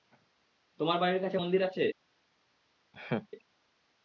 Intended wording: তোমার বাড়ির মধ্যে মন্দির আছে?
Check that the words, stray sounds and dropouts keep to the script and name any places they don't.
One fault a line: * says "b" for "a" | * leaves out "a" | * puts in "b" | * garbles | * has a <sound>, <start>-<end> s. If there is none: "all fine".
* says "কাছে" for "মধ্যে"
* has a laugh, 2.9-3.3 s